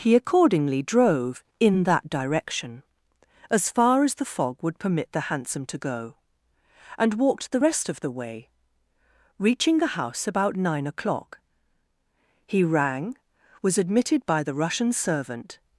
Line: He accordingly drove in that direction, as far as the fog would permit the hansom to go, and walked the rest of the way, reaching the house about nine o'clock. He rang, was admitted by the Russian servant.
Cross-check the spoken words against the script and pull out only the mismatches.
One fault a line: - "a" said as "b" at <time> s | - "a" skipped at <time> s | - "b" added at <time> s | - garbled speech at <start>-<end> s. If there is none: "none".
none